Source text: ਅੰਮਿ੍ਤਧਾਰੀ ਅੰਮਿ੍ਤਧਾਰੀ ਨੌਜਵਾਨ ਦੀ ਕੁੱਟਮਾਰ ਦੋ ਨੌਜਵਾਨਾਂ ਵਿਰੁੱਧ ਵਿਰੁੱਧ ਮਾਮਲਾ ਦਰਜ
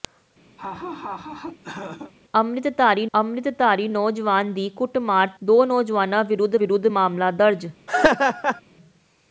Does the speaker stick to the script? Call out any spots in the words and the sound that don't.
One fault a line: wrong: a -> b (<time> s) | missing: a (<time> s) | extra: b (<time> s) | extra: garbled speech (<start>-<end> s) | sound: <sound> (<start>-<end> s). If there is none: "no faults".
sound: laugh (0.6-2.1 s)
sound: laugh (7.9-8.6 s)